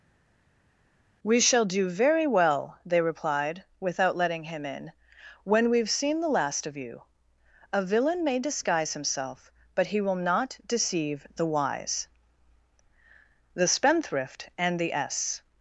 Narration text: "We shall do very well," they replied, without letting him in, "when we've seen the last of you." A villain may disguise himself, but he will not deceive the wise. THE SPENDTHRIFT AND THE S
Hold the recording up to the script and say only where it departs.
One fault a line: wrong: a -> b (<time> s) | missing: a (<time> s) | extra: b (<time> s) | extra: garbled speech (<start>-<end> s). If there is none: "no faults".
no faults